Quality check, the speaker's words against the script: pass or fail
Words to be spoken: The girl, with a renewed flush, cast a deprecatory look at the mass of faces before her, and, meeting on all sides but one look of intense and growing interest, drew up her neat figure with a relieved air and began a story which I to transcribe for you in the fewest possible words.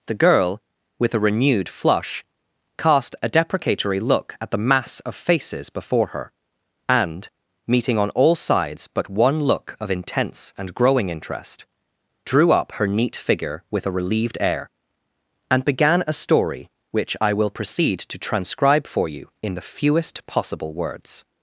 fail